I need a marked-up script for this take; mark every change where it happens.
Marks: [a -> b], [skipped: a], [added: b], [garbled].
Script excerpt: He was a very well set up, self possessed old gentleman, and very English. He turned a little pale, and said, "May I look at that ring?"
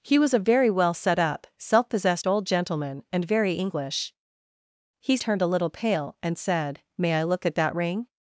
He was a very well set up, self possessed old gentleman, and very English. He turned a little pale, and said, "May I look at that ring?"